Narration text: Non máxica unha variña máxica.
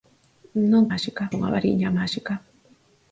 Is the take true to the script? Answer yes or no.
yes